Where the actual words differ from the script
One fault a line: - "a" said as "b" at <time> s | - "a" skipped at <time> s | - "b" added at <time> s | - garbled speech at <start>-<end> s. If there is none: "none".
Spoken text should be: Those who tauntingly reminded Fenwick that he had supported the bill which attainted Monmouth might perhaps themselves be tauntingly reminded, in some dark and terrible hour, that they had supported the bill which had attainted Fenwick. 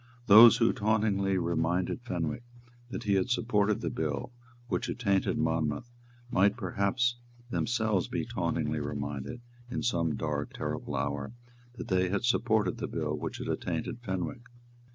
- "and" skipped at 10.6 s